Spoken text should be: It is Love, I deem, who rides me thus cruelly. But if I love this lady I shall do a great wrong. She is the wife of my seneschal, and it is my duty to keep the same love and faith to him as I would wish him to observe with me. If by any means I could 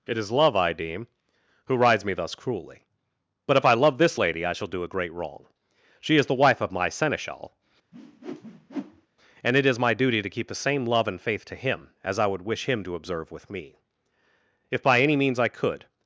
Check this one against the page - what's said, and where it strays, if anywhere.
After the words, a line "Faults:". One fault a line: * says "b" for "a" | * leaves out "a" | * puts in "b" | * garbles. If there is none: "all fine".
It is Love, I deem, who rides me thus cruelly. But if I love this lady I shall do a great wrong. She is the wife of my seneschal, and it is my duty to keep the same love and faith to him as I would wish him to observe with me. If by any means I could
Faults:
all fine